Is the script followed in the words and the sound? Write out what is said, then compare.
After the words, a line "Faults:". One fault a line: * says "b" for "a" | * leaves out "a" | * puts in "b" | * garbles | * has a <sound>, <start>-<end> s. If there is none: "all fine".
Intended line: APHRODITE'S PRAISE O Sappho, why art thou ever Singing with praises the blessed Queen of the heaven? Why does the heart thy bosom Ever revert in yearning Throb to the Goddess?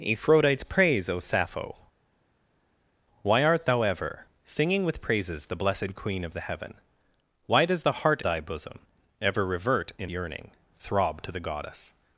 APHRODITE'S PRAISE O Sappho, why art thou ever Singing with praises the blessed Queen of the heaven? Why does the heart thy bosom Ever revert in yearning Throb to the Goddess?
Faults:
all fine